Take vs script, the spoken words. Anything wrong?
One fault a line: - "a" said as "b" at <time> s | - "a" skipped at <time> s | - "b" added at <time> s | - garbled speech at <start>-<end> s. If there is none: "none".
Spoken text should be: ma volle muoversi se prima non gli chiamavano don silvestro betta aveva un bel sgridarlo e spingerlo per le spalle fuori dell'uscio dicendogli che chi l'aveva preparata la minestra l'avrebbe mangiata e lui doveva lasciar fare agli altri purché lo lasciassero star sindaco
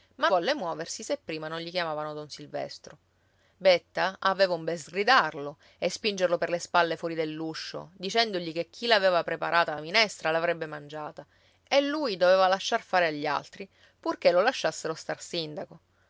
none